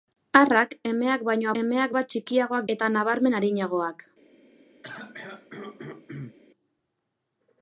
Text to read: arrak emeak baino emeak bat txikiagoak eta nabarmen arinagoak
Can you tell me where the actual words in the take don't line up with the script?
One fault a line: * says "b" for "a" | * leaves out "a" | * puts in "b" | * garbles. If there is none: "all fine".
all fine